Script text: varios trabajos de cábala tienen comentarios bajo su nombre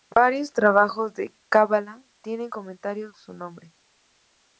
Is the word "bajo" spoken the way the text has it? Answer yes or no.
no